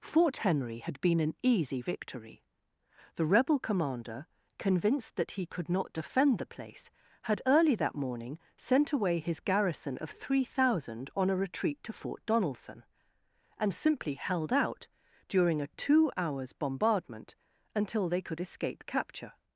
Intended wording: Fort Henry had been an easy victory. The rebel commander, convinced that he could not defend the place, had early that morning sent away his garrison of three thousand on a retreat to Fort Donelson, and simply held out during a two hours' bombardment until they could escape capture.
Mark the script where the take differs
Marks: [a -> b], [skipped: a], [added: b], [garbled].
Fort Henry had been an easy victory. The rebel commander, convinced that he could not defend the place, had early that morning sent away his garrison of three thousand on a retreat to Fort Donelson, and simply held out during a two hours' bombardment until they could escape capture.